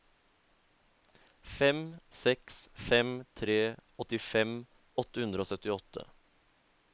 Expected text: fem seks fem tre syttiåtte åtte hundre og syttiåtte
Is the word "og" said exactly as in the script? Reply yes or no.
yes